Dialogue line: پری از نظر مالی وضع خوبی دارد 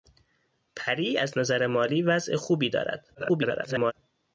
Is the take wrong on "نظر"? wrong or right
right